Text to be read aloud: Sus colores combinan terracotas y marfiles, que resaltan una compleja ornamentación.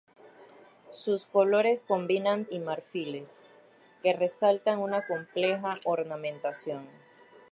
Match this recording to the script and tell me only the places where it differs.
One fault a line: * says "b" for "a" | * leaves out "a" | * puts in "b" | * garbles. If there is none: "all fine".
* leaves out "terracotas"